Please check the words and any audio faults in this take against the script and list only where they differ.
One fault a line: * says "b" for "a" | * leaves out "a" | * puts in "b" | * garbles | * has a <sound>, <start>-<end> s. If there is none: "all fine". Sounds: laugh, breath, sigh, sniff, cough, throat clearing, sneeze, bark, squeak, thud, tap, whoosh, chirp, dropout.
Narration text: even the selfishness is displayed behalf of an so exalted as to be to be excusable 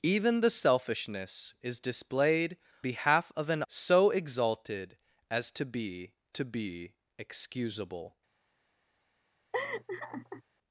* has a laugh, 9.5-10.4 s